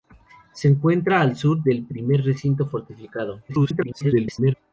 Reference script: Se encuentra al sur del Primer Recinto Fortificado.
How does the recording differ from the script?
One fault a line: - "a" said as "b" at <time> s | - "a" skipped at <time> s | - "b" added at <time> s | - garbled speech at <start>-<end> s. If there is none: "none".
- garbled speech at 3.5-4.5 s